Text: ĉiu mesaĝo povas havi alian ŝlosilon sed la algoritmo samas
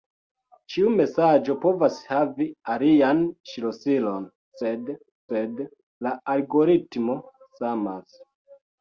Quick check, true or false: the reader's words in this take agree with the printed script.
false